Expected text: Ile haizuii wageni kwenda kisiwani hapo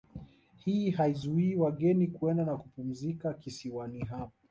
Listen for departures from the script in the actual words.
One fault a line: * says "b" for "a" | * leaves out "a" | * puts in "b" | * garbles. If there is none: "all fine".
* says "Hii" for "Ile"
* puts in "na kupumzika"